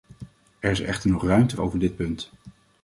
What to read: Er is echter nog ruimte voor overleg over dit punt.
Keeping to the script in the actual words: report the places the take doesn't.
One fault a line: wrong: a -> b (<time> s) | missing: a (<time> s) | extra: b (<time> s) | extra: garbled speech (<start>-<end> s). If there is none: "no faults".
missing: voor overleg (1.6 s)